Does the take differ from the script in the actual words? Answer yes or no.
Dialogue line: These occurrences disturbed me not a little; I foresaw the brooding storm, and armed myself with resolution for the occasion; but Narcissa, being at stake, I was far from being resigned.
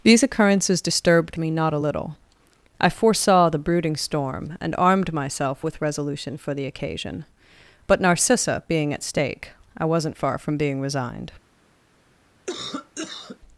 yes